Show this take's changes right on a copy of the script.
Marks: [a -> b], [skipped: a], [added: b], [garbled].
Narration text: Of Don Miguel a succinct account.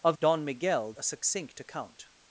Of Don Miguel a succinct account.